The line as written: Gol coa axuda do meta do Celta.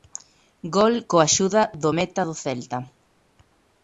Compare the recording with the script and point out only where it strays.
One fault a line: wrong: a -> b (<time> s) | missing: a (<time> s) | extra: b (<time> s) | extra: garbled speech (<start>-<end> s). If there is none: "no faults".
no faults